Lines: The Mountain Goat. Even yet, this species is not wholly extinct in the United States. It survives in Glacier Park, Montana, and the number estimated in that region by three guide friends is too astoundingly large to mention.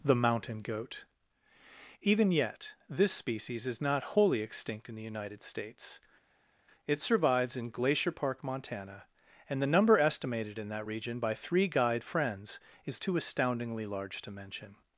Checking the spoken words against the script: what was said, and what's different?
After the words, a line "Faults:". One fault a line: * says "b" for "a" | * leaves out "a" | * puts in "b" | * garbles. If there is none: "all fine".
The Mountain Goat. Even yet, this species is not wholly extinct in the United States. It survives in Glacier Park, Montana, and the number estimated in that region by three guide friends is too astoundingly large to mention.
Faults:
all fine